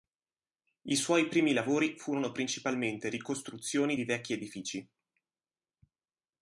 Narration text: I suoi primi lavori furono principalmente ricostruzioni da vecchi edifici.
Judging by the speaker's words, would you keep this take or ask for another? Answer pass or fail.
fail